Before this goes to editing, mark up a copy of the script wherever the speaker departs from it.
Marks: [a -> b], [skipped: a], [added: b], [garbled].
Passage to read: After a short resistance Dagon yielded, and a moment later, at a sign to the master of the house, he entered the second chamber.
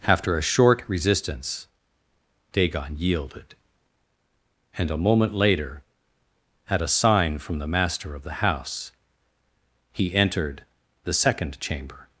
After a short resistance Dagon yielded, and a moment later, at a sign [to -> from] the master of the house, he entered the second chamber.